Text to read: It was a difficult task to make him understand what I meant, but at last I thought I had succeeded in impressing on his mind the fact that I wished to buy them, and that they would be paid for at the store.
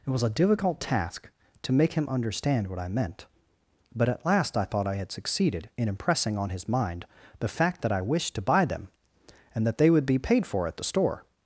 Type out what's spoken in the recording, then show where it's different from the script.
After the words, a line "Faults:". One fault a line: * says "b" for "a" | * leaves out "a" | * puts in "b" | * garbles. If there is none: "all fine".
It was a difficult task to make him understand what I meant, but at last I thought I had succeeded in impressing on his mind the fact that I wished to buy them, and that they would be paid for at the store.
Faults:
all fine